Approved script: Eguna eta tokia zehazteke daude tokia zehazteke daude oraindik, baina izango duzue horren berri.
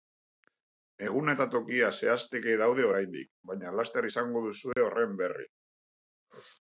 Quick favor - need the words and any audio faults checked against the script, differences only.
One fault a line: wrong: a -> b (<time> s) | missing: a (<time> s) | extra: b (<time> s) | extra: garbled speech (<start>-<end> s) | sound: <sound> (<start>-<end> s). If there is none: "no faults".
missing: tokia zehazteke daude (2.9 s)
extra: laster (3.8 s)
sound: dropout (4.7-4.8 s)